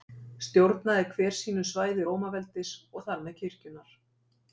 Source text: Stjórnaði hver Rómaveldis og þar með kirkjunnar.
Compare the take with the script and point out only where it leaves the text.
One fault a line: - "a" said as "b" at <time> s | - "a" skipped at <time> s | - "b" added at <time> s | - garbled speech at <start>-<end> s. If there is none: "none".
- "sínu svæði" added at 1.4 s